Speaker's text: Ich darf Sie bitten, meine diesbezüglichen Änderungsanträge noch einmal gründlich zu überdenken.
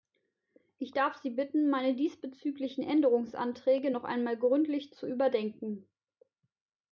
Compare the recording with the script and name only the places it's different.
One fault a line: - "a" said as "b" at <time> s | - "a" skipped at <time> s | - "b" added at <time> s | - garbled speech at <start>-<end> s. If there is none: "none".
none